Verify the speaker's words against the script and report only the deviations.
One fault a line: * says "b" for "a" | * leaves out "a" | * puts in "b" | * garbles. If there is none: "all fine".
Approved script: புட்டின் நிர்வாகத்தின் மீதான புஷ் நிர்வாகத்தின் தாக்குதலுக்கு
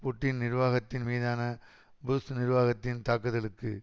all fine